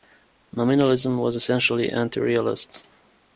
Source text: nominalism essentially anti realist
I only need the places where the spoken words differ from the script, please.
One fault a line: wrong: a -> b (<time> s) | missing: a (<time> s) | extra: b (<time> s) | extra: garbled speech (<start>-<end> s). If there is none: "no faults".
extra: was (1.2 s)